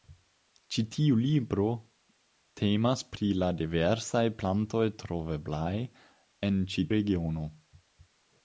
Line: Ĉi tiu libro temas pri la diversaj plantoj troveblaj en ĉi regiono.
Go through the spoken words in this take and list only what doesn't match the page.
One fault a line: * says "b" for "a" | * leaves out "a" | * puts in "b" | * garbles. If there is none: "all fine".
all fine